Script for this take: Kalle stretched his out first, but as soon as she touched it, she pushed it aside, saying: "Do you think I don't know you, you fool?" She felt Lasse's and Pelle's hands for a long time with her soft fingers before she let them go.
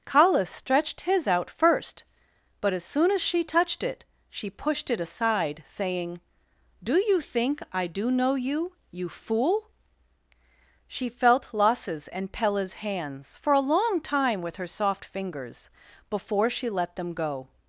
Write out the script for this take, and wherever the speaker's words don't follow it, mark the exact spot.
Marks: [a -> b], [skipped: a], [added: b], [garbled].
Kalle stretched his out first, but as soon as she touched it, she pushed it aside, saying: "Do you think I [don't -> do] know you, you fool?" She felt Lasse's and Pelle's hands for a long time with her soft fingers before she let them go.